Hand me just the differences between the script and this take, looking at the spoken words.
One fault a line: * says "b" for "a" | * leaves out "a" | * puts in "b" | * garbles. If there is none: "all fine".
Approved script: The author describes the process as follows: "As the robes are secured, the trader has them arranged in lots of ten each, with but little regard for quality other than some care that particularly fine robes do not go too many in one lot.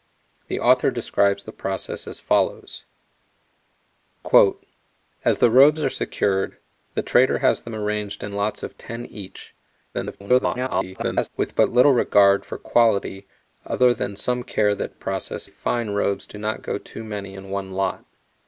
* garbles
* says "process" for "particularly"